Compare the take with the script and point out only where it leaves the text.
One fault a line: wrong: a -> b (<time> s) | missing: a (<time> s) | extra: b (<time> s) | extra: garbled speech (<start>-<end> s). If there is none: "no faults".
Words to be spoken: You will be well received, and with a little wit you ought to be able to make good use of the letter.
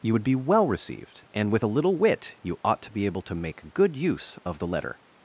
wrong: will -> would (0.1 s)